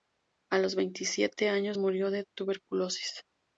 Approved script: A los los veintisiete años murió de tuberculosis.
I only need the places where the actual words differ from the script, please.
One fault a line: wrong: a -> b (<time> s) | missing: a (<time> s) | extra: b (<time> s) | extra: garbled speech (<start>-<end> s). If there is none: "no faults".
missing: los (0.7 s)